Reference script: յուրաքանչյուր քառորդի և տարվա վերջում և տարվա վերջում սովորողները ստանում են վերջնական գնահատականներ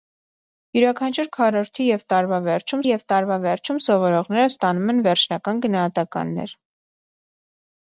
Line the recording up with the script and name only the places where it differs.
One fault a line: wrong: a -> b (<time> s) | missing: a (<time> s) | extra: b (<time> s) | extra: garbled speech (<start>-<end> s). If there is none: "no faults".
no faults